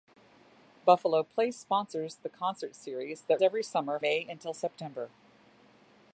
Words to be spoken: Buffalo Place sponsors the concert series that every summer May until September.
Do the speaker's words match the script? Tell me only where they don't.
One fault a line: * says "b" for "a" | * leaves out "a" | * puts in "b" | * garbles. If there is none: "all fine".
all fine